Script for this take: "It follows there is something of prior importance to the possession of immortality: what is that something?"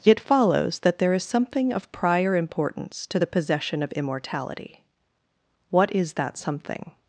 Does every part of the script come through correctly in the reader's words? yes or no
no